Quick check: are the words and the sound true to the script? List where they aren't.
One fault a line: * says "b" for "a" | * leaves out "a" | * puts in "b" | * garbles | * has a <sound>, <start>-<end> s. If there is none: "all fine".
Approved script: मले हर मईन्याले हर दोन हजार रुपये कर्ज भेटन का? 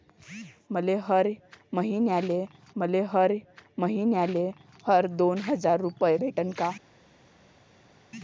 * puts in "मले"
* puts in "मईन्याले हर"
* leaves out "कर्ज"